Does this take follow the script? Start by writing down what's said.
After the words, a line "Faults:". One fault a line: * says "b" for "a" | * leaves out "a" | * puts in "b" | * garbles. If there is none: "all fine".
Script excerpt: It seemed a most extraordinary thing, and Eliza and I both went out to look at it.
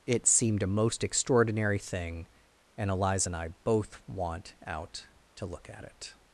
It seemed a most extraordinary thing, and Eliza and I both want out to look at it.
Faults:
* says "want" for "went"